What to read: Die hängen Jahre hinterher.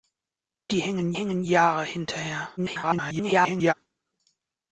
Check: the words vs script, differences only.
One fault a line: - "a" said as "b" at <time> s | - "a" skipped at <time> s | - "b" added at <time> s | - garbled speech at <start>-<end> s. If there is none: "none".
- "hängen" added at 1.1 s
- garbled speech at 2.6-3.7 s